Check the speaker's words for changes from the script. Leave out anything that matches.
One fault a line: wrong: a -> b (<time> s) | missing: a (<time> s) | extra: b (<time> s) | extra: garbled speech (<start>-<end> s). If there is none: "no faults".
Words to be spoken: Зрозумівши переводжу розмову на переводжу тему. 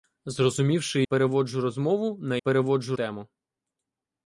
no faults